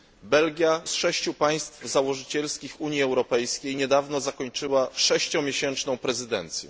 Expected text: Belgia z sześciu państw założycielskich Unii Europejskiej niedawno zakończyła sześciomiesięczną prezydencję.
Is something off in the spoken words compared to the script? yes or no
no